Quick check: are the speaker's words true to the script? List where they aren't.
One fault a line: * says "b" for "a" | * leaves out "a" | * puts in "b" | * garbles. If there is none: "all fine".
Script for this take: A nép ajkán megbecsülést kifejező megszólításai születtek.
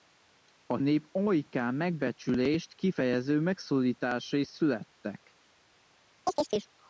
all fine